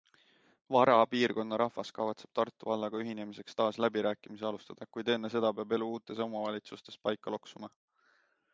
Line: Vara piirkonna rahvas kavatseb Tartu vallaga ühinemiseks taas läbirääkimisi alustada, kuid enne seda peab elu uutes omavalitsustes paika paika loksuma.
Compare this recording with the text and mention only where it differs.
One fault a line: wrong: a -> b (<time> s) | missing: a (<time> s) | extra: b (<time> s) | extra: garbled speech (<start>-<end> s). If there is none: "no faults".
missing: paika (7.4 s)